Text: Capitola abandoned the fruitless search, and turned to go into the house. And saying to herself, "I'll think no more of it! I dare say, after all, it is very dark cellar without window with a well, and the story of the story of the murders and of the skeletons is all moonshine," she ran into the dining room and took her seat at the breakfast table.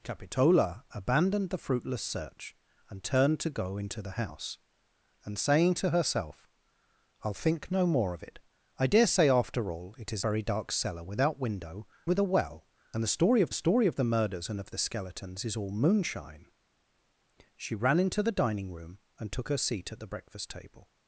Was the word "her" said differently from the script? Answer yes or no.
no